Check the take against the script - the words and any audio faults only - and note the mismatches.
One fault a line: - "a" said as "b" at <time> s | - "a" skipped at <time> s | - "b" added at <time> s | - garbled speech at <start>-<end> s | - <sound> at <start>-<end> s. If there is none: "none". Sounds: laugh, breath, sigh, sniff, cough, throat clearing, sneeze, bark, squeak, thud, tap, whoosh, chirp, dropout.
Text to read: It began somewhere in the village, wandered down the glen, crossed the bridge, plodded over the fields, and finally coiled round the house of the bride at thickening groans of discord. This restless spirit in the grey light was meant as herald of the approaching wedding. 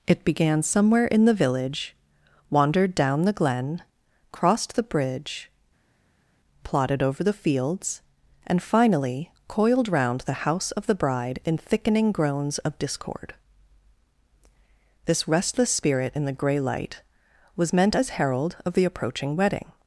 - "at" said as "in" at 11.4 s